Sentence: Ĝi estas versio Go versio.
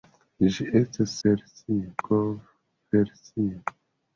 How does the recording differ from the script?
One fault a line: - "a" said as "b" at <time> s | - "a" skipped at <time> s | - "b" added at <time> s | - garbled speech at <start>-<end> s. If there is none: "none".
none